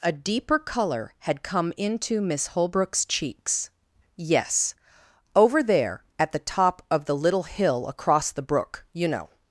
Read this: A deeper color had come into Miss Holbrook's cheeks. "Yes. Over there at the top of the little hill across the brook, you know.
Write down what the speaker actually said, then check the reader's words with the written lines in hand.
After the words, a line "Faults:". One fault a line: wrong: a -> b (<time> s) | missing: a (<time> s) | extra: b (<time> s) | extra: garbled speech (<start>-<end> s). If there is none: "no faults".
A deeper color had come into Miss Holbrook's cheeks. "Yes. Over there at the top of the little hill across the brook, you know.
Faults:
no faults